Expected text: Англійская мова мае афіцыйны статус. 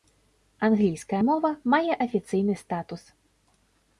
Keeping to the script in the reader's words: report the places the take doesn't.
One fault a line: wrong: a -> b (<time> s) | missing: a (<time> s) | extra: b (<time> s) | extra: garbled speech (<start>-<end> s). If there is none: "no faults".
no faults